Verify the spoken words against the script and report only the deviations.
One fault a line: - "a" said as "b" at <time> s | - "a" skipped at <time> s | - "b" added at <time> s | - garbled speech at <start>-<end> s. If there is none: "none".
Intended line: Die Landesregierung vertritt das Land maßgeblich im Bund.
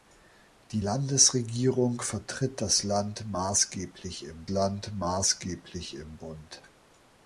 - "Land maßgeblich im" added at 4.5 s